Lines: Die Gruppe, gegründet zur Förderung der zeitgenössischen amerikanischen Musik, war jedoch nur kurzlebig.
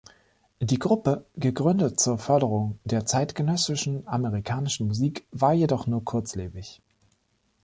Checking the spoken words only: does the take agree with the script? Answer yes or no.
yes